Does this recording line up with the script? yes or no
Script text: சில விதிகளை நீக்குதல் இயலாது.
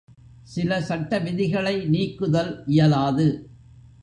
no